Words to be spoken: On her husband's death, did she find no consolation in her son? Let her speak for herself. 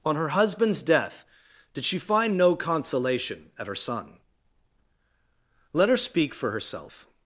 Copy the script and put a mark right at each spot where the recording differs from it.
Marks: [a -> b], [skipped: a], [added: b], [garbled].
On her husband's death, did she find no consolation [in -> at] her son? Let her speak for herself.